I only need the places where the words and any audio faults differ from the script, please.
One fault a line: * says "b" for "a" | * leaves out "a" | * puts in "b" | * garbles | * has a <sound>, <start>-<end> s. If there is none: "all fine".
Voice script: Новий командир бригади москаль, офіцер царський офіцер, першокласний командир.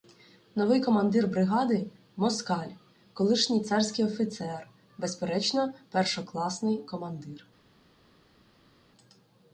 * says "колишній" for "офіцер"
* puts in "безперечно"